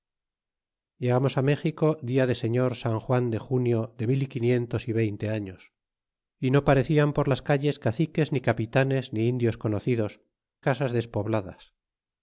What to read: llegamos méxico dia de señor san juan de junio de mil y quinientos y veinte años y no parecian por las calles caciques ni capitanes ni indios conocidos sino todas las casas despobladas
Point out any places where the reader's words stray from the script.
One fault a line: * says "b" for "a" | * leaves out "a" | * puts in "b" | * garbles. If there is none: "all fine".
* leaves out "sino todas las"